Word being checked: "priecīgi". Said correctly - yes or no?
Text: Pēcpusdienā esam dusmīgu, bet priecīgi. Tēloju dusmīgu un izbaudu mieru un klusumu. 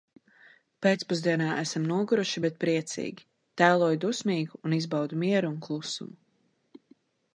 yes